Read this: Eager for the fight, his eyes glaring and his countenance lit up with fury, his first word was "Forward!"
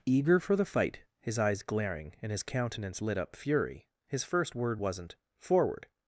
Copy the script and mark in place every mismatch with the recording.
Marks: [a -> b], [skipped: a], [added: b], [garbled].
Eager for the fight, his eyes glaring and his countenance lit up [skipped: with] fury, his first word [was -> wasn't] "Forward!"